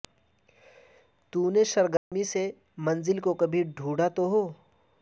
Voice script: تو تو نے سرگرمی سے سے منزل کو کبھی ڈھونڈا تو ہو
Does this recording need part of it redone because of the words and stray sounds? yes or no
yes